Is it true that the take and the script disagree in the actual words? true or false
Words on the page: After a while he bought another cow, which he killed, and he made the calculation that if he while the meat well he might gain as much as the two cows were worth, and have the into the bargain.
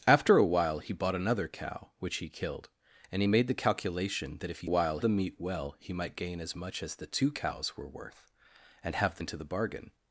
false